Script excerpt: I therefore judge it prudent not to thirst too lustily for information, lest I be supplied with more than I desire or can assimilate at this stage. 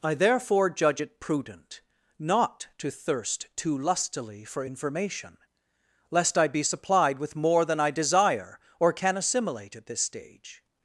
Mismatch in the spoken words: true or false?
false